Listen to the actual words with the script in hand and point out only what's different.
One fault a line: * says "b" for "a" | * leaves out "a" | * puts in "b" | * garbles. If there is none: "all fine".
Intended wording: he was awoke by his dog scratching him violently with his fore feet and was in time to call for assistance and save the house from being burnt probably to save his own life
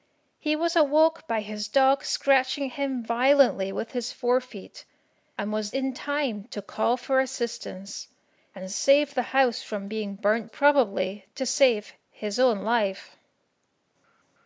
all fine